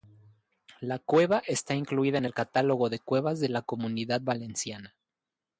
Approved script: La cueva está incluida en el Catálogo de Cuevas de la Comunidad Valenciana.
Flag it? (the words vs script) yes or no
no